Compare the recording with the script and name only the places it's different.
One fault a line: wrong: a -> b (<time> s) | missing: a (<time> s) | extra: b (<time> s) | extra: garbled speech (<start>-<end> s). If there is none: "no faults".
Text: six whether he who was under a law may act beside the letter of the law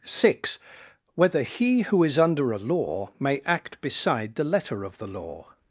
wrong: was -> is (2.0 s)